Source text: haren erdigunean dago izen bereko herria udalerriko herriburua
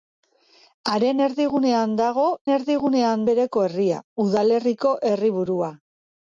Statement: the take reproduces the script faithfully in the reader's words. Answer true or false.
false